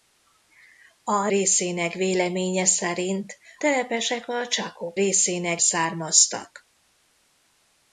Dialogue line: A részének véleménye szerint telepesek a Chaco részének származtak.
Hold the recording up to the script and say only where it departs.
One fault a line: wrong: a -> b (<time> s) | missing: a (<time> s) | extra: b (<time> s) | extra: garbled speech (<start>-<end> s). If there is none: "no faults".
no faults